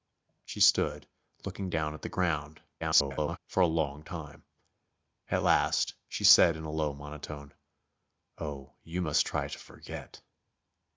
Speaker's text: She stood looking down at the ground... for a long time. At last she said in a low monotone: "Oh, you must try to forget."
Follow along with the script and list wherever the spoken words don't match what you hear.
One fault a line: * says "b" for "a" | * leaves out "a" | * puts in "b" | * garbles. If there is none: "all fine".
* garbles